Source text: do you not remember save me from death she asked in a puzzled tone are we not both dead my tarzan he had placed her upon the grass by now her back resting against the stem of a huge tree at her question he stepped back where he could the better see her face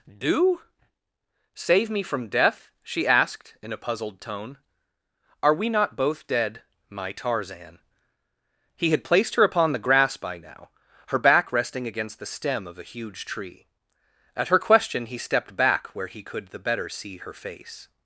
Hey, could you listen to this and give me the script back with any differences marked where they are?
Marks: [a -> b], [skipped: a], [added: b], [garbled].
do [skipped: you not remember] save me from death she asked in a puzzled tone are we not both dead my tarzan he had placed her upon the grass by now her back resting against the stem of a huge tree at her question he stepped back where he could the better see her face